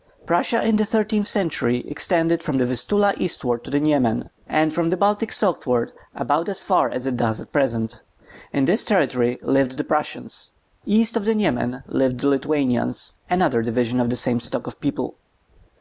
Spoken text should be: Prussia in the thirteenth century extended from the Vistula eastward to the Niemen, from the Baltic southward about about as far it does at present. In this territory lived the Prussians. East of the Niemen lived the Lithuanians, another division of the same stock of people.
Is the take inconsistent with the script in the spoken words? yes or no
yes